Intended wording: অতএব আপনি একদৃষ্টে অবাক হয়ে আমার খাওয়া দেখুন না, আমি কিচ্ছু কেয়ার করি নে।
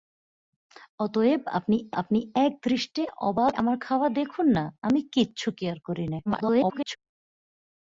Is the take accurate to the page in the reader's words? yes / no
no